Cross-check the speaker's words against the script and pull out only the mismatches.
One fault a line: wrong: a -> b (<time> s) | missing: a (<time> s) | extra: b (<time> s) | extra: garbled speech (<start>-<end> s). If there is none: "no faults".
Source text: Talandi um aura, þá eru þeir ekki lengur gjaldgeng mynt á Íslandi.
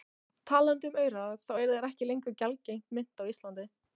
no faults